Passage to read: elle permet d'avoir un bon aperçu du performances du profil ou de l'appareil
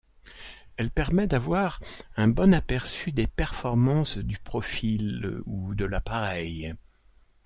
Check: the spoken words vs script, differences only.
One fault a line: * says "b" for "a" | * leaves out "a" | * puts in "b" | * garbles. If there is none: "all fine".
* says "des" for "du"